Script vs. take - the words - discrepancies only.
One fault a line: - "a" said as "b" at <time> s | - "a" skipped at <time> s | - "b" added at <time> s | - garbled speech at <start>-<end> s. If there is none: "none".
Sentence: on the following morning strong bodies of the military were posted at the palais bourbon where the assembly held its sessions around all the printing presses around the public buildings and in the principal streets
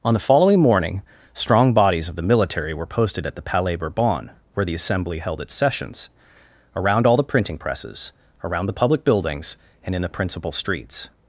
none